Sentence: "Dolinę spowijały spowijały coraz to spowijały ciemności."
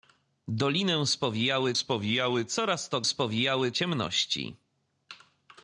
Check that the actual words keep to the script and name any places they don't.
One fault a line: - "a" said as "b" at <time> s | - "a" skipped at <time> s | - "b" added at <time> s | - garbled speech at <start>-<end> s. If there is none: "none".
none